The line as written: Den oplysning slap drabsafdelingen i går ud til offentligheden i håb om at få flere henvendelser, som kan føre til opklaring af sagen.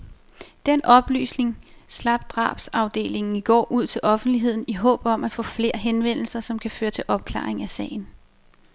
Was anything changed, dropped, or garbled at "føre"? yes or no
no